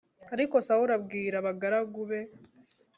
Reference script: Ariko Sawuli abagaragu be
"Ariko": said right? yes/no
yes